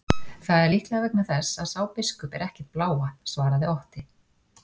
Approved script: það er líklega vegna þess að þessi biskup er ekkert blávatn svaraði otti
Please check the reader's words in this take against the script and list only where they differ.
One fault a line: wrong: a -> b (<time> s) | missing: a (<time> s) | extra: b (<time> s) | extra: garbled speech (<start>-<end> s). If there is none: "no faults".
wrong: þessi -> sá (1.7 s)